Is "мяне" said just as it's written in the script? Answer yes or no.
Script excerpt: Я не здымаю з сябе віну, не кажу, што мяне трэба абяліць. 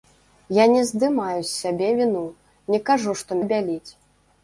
no